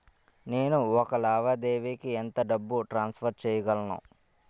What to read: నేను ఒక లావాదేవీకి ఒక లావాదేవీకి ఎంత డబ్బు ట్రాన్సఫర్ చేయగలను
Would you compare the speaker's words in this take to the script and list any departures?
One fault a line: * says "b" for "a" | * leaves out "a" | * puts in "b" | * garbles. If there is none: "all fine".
* leaves out "ఒక లావాదేవీకి"